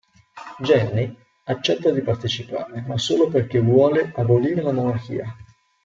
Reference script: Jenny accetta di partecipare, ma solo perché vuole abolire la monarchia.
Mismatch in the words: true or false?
false